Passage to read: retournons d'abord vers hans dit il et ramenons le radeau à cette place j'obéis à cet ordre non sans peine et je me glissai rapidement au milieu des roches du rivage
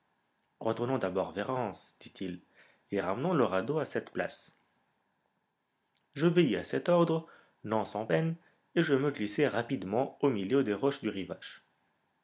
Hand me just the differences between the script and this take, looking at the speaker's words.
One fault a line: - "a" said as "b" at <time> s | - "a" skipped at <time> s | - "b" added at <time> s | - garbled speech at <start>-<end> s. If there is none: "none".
none